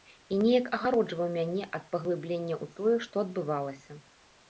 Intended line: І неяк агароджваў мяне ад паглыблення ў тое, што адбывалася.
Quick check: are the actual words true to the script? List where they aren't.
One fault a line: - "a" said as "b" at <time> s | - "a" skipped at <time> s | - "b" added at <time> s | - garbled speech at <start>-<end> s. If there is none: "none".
none